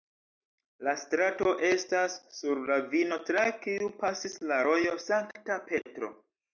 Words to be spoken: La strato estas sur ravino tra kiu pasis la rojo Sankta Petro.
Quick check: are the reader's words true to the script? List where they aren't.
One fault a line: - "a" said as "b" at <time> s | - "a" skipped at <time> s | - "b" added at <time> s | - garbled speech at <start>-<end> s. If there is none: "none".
none